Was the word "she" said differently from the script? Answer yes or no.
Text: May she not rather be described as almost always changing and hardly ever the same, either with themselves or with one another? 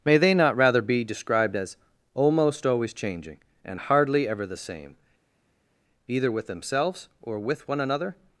yes